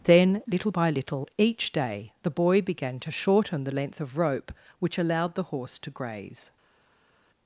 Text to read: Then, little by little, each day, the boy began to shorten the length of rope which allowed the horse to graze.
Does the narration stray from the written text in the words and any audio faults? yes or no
no